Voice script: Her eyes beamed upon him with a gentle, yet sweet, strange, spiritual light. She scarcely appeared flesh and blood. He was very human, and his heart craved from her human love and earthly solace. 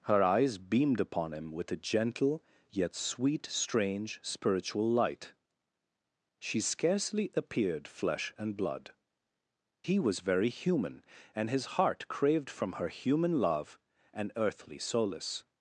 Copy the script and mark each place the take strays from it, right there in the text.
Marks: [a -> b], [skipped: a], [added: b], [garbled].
Her eyes beamed upon him with a gentle, yet sweet, strange, spiritual light. She scarcely appeared flesh and blood. He was very human, and his heart craved from her human love and earthly solace.